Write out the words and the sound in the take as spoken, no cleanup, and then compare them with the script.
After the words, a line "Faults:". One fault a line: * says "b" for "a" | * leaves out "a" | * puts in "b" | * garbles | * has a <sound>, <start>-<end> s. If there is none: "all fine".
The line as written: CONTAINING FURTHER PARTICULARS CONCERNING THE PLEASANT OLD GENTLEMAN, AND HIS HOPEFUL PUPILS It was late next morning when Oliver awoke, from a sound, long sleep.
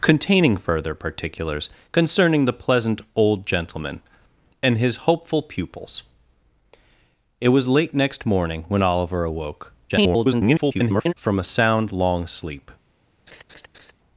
CONTAINING FURTHER PARTICULARS CONCERNING THE PLEASANT OLD GENTLEMAN, AND HIS HOPEFUL PUPILS It was late next morning when Oliver awoke, [garbled] from a sound, long sleep.
Faults:
* garbles
* has a laugh, 13.3-13.9 s